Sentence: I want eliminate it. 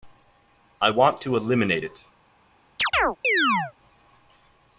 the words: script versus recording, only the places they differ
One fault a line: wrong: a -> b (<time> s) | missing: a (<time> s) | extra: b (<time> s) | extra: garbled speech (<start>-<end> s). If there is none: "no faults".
extra: to (1.2 s)